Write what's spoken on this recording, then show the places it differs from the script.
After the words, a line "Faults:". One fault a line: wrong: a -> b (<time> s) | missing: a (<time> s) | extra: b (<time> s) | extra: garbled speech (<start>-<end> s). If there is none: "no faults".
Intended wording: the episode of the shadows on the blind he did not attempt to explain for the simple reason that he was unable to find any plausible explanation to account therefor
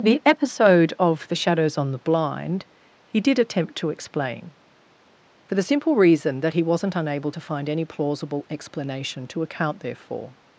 the episode of the shadows on the blind he did attempt to explain for the simple reason that he wasn't unable to find any plausible explanation to account therefor
Faults:
missing: not (3.4 s)
wrong: was -> wasn't (6.6 s)